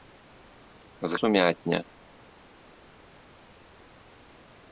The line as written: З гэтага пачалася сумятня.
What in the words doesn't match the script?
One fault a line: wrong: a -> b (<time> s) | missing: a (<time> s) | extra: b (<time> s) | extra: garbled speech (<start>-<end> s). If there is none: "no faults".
missing: гэтага пачалася (1.2 s)